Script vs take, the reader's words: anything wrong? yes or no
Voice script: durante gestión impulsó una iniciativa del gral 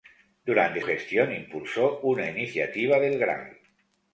no